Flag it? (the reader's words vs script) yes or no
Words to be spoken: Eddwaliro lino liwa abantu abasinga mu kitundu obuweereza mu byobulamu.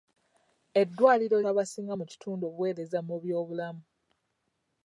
yes